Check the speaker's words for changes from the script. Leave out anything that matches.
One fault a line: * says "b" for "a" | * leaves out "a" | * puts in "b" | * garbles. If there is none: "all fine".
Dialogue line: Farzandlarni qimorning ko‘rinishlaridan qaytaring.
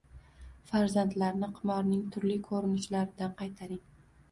* puts in "turli"